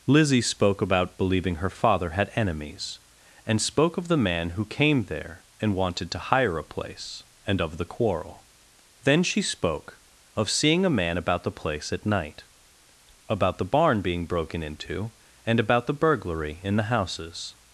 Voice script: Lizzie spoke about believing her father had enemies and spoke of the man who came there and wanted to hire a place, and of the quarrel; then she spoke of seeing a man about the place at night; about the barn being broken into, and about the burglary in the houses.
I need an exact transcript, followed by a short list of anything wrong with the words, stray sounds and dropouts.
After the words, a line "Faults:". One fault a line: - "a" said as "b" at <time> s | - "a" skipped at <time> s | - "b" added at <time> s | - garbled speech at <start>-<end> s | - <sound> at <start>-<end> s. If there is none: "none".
Lizzie spoke about believing her father had enemies and spoke of the man who came there and wanted to hire a place, and of the quarrel; then she spoke of seeing a man about the place at night; about the barn being broken into, and about the burglary in the houses.
Faults:
none